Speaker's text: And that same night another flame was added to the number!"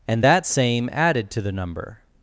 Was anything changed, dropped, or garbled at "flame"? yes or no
yes